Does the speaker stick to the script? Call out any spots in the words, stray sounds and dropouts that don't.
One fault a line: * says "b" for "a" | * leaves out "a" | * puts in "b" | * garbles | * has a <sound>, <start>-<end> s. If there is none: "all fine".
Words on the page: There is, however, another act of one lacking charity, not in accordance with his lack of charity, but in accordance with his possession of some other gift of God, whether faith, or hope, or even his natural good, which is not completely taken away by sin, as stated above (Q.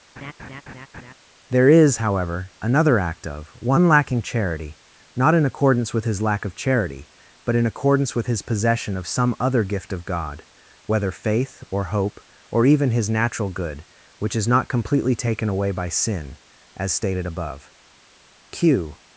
* has a laugh, 0.2-1.1 s